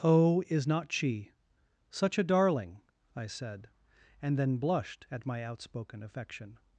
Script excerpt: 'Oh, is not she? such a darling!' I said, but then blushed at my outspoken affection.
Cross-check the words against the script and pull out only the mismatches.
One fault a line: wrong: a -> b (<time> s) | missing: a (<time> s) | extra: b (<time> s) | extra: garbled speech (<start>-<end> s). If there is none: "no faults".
wrong: but -> and (4.2 s)